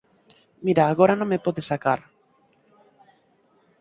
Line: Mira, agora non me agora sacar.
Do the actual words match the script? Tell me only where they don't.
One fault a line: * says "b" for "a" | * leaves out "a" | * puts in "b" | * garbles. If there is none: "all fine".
* says "podes" for "agora"